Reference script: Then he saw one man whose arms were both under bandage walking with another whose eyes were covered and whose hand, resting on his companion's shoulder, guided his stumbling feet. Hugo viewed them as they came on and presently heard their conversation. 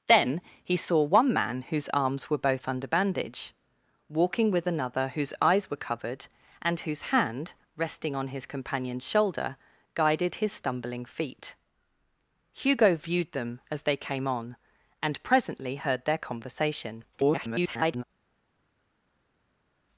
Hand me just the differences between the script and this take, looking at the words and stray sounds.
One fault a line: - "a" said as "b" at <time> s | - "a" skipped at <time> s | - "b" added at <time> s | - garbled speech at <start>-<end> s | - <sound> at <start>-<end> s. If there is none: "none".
- garbled speech at 17.1-18.0 s